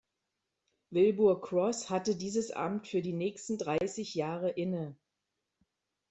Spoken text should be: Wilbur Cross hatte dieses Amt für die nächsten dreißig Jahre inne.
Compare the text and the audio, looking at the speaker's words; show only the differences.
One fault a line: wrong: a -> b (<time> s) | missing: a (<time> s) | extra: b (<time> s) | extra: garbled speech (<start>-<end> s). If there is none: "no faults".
no faults